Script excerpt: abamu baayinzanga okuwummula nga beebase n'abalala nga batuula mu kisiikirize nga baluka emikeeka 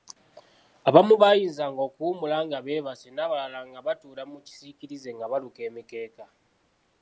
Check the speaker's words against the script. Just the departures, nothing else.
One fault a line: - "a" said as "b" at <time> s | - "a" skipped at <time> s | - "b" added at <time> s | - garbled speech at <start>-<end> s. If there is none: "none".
none